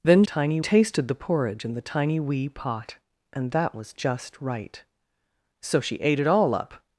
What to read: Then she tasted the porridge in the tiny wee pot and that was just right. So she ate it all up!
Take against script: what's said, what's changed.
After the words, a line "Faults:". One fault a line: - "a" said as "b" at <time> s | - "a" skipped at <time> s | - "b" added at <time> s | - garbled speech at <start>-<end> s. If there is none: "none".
Then tiny tasted the porridge in the tiny wee pot and that was just right. So she ate it all up!
Faults:
- "she" said as "tiny" at 0.2 s